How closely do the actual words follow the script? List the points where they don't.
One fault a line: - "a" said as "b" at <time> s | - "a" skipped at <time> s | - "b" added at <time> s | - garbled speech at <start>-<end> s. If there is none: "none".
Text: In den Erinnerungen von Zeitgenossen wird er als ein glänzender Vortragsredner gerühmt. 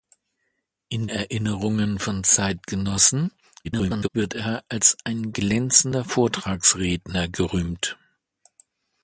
- "den" skipped at 1.1 s
- garbled speech at 3.6-4.1 s